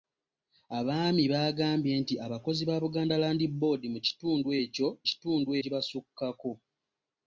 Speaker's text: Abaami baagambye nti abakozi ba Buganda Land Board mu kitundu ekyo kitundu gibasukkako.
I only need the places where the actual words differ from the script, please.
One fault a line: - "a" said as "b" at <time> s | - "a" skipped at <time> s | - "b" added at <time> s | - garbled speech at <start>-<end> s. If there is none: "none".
none